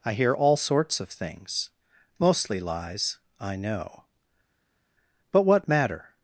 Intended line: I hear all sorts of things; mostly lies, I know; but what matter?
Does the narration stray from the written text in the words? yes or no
no